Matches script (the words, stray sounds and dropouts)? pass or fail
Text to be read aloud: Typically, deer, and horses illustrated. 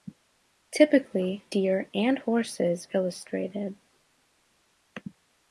pass